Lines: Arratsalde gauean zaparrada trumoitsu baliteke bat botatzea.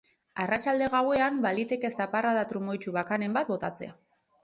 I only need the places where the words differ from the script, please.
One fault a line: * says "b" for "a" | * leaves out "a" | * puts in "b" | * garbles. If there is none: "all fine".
* puts in "baliteke"
* says "bakanen" for "baliteke"